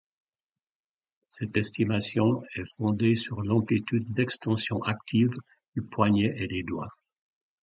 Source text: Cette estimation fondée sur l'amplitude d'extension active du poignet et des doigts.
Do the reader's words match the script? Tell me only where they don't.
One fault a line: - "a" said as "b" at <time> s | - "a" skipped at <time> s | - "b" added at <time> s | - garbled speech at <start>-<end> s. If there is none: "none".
- "est" added at 2.5 s